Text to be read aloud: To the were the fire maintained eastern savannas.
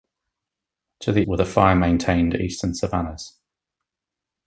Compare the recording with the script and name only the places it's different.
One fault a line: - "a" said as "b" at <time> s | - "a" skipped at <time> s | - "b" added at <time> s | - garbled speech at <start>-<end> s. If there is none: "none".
none